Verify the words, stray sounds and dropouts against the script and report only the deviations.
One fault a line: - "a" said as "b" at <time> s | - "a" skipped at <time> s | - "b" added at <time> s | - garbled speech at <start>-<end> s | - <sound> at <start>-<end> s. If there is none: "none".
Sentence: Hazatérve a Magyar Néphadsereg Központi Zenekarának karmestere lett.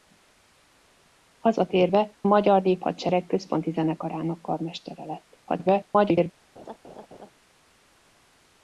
- "a" skipped at 2.2 s
- garbled speech at 5.5-6.3 s
- laugh at 6.6-7.3 s